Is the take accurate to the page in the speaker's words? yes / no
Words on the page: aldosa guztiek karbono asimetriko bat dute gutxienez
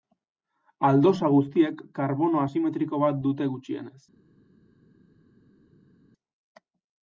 yes